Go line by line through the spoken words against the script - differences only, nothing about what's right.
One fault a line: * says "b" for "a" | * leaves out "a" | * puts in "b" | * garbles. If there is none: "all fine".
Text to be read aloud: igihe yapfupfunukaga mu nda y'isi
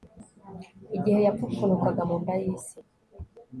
all fine